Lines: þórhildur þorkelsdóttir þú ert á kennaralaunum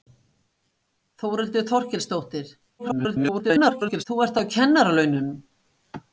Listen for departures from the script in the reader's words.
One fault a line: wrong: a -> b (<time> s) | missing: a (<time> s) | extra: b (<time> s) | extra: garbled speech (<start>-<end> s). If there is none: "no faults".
extra: garbled speech (2.8-4.0 s)